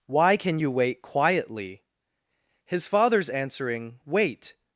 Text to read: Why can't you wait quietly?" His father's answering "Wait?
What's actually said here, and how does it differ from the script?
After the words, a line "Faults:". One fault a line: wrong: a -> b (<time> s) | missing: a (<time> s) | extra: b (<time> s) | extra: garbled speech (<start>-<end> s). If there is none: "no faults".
Why can you wait quietly?" His father's answering "Wait?
Faults:
wrong: can't -> can (0.3 s)